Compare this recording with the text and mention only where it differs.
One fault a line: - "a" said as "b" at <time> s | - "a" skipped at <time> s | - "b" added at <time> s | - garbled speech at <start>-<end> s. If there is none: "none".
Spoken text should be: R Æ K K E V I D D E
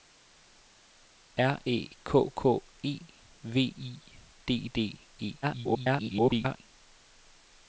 - garbled speech at 5.4-6.6 s